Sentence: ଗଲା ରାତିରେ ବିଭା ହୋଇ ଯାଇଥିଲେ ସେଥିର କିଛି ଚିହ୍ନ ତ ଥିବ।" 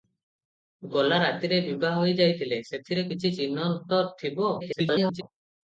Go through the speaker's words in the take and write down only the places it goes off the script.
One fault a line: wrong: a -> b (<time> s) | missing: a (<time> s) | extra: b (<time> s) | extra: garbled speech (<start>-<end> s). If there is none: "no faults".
extra: garbled speech (4.6-5.2 s)